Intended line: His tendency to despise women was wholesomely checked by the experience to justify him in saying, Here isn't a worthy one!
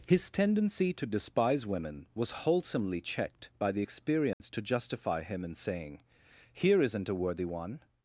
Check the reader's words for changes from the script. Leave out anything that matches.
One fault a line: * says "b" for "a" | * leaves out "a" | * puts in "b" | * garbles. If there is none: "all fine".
all fine